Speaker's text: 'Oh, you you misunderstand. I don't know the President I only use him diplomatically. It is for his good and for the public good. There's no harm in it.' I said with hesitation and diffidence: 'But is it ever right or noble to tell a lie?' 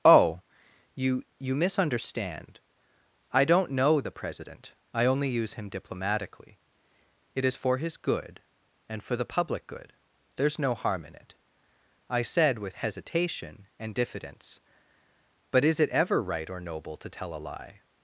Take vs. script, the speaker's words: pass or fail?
pass